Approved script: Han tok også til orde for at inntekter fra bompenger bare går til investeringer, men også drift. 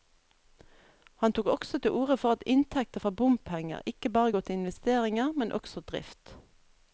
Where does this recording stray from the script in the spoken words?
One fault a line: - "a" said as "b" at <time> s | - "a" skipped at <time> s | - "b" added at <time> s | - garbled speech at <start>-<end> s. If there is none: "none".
- "ikke" added at 3.9 s